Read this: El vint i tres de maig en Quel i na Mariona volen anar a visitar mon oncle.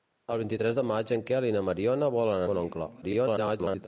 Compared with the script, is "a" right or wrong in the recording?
wrong